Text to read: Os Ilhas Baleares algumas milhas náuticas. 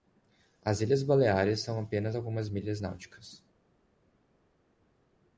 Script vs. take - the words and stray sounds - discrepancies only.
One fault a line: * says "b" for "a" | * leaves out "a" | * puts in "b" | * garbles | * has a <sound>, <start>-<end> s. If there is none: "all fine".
* says "As" for "Os"
* puts in "são apenas"